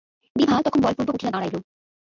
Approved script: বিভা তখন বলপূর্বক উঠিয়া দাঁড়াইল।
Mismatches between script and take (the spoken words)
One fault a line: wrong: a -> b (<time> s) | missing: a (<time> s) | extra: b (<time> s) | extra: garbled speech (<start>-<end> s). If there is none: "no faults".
no faults